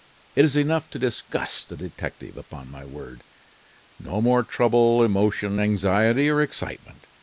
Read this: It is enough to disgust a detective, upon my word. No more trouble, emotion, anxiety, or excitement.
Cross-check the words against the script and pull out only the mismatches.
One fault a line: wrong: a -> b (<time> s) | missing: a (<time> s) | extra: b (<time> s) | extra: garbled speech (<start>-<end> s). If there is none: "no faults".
no faults